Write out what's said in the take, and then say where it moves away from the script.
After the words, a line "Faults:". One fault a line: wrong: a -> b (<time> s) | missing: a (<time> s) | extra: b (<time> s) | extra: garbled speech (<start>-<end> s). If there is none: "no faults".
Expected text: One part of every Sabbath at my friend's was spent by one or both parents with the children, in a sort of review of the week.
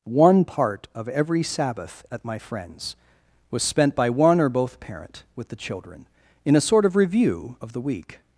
One part of every Sabbath at my friend's was spent by one or both parent with the children, in a sort of review of the week.
Faults:
wrong: parents -> parent (4.8 s)